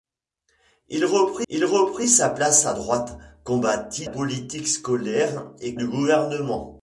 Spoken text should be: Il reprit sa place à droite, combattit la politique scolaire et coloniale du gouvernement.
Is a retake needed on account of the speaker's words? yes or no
yes